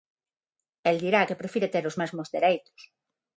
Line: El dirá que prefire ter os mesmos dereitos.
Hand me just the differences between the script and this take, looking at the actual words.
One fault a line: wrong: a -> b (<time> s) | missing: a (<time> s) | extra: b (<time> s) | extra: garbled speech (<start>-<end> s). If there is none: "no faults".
no faults